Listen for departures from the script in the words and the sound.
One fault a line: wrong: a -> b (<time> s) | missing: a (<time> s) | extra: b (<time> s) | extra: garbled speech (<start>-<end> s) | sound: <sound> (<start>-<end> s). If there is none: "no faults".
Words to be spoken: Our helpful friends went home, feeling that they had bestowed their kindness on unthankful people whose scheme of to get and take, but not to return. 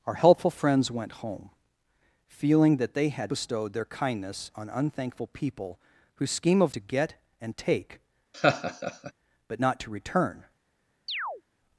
sound: laugh (8.3-9.1 s)
sound: chirp (11.1-11.4 s)